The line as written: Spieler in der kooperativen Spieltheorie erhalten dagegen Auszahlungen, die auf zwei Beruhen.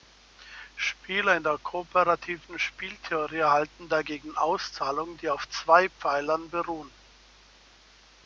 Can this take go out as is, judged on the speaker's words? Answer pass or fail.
fail